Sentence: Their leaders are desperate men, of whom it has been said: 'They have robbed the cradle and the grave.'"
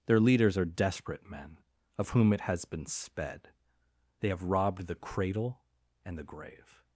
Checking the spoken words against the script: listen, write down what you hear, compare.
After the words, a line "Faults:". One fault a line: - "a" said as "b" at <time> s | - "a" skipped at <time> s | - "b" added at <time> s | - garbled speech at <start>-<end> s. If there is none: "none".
Their leaders are desperate men, of whom it has been sped: 'They have robbed the cradle and the grave.'"
Faults:
- "said" said as "sped" at 2.9 s